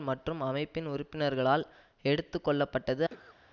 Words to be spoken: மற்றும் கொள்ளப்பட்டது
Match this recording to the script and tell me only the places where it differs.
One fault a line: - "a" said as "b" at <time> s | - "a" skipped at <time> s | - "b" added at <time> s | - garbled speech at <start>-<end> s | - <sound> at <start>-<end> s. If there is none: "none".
- "அமைப்பின் உறுப்பினர்களால் எடுத்து" added at 0.4 s
- cough at 3.1-3.4 s